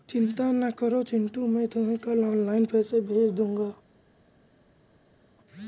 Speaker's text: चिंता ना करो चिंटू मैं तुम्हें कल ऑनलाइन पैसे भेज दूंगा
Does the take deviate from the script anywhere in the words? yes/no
no